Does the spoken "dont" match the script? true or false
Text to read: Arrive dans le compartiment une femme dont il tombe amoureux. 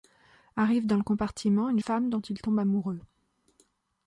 true